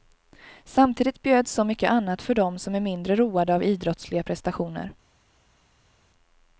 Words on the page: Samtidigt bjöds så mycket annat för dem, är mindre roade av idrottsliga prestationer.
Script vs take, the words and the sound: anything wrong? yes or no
yes